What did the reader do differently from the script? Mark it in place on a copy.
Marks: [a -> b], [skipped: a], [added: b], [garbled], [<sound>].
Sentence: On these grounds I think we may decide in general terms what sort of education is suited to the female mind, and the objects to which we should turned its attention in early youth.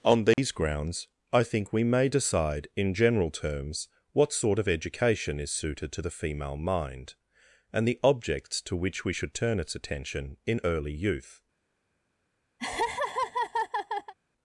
On these [dropout] grounds I think we may decide in general terms what sort of education is suited to the female mind, and the objects to which we should [turned -> turn] its attention in early youth. [laugh]